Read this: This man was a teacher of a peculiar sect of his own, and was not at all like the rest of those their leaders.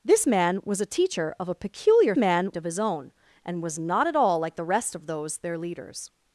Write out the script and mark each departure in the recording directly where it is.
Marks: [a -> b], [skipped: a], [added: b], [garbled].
This man was a teacher of a peculiar [sect -> man] of his own, and was not at all like the rest of those their leaders.